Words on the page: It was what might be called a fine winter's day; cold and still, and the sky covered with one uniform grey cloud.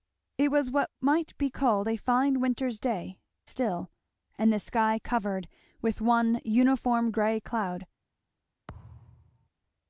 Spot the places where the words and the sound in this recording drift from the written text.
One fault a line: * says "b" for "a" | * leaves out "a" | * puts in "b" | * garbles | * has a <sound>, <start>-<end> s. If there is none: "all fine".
* leaves out "cold and"
* has a thud, 8.7-9.5 s